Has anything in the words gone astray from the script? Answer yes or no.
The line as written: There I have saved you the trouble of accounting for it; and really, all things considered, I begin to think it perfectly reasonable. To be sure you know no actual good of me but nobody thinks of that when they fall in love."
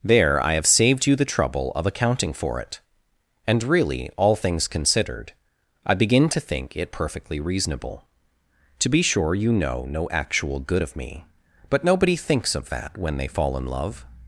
no